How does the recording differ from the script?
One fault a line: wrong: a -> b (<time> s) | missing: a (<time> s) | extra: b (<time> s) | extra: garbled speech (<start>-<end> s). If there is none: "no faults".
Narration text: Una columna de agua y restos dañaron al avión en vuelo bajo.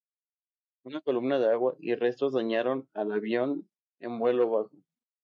no faults